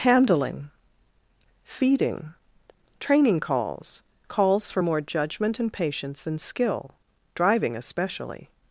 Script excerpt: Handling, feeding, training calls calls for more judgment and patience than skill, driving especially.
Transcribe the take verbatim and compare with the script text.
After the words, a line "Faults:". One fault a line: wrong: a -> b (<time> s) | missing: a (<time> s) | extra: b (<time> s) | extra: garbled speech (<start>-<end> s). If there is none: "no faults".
Handling, feeding, training calls calls for more judgment and patience than skill, driving especially.
Faults:
no faults